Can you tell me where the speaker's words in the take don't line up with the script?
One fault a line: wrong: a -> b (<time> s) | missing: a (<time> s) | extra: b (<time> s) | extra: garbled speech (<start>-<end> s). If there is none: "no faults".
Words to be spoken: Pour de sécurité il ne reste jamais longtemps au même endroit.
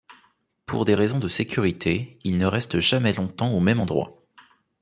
extra: des raisons (0.8 s)